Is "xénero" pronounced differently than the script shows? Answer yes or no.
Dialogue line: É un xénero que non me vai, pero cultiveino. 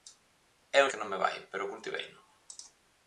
yes